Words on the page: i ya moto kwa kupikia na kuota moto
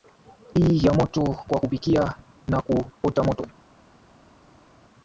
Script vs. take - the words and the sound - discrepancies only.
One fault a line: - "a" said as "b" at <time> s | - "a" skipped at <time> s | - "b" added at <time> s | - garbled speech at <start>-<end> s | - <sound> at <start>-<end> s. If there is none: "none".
none